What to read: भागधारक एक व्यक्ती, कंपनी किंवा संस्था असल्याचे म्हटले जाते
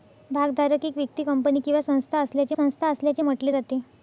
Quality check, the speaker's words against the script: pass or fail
fail